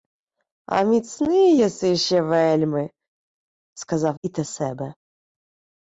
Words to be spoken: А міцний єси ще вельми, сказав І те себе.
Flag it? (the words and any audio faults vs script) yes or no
no